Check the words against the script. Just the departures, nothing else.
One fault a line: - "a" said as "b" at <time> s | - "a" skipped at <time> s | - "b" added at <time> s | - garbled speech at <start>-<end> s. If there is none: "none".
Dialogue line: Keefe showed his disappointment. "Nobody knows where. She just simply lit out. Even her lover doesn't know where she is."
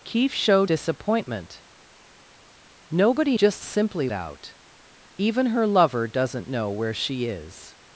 - "his" skipped at 0.7 s
- "knows where She" skipped at 3.4 s
- "lit" skipped at 4.1 s